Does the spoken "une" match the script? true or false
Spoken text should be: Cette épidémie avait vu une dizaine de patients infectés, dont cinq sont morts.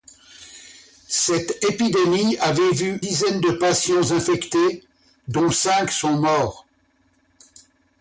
false